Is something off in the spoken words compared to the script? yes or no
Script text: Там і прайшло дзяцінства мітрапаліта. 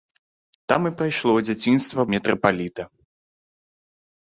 no